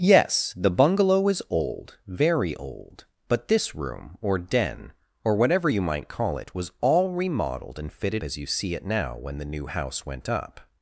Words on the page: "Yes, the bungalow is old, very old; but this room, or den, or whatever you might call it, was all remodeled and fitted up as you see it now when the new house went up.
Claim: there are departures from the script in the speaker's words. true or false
true